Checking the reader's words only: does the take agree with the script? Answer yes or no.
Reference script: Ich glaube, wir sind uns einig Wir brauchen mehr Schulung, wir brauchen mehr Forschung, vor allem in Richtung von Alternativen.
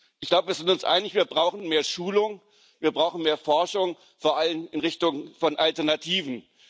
yes